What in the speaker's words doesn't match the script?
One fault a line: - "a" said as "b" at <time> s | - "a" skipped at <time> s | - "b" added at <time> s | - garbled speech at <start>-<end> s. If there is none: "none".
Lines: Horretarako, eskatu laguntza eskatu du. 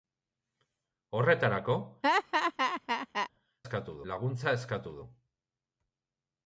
none